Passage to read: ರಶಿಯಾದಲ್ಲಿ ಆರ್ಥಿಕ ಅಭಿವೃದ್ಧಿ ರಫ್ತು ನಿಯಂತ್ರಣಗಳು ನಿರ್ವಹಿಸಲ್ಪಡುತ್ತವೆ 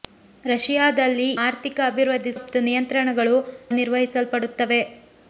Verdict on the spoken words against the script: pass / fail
pass